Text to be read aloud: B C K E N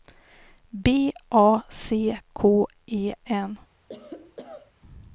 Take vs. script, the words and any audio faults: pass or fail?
fail